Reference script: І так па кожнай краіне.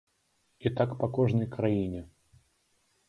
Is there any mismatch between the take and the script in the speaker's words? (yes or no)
no